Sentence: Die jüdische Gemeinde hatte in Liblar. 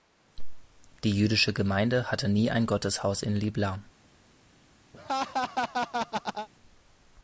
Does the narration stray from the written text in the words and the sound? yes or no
yes